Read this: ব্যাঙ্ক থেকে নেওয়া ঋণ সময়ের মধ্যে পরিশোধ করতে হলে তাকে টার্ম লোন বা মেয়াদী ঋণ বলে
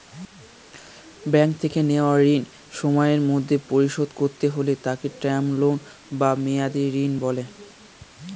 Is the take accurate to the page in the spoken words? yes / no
yes